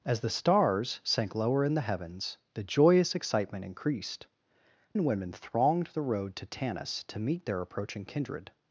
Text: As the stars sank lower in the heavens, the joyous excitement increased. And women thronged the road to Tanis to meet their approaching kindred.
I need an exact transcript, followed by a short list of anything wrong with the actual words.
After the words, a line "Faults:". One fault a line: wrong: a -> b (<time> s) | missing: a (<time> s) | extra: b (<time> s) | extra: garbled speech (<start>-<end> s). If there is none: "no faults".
As the stars sank lower in the heavens, the joyous excitement increased. And women thronged the road to Tanis to meet their approaching kindred.
Faults:
no faults